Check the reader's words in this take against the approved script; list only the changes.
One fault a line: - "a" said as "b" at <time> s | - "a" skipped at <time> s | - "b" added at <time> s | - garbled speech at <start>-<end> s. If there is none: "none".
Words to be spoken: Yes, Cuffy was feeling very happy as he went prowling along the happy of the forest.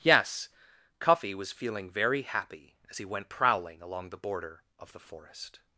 - "happy" said as "border" at 4.2 s